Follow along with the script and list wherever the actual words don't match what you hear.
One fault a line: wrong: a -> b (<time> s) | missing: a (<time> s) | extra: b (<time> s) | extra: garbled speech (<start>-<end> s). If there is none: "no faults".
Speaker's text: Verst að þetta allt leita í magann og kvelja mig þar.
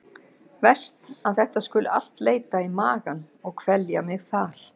extra: skuli (1.7 s)